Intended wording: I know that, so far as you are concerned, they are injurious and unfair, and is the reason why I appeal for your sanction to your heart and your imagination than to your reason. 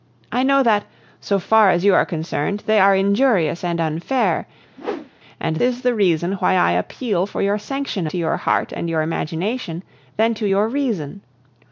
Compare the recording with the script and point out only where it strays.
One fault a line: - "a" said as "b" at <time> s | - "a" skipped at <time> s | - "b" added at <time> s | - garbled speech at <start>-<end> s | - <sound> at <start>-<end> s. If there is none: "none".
- whoosh at 4.8-5.1 s